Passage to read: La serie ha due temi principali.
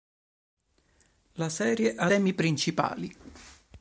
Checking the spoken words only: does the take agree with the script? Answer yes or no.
no